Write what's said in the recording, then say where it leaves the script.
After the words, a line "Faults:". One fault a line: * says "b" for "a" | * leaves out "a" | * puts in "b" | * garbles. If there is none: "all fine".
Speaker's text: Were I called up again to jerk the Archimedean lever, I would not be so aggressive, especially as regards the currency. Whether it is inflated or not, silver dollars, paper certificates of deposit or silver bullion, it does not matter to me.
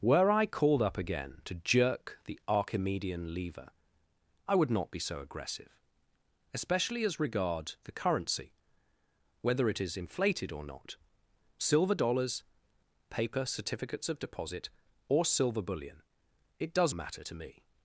Were I called up again to jerk the Archimedean lever, I would not be so aggressive, especially as regards the currency. Whether it is inflated or not, silver dollars, paper certificates of deposit or silver bullion, it does matter to me.
Faults:
* leaves out "not"